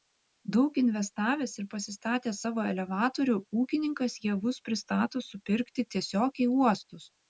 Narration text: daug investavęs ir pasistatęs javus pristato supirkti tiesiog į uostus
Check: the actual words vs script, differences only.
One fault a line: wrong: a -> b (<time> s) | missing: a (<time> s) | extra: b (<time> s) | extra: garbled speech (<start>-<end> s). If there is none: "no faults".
extra: savo elevatorių ūkininkas (2.5 s)